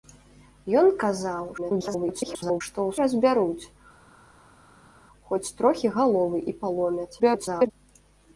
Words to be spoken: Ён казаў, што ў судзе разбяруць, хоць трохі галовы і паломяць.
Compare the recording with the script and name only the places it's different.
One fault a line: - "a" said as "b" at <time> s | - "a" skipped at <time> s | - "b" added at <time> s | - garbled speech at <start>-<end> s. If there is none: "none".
- garbled speech at 1.6-2.6 s
- "судзе" skipped at 3.0 s
- garbled speech at 7.2-7.7 s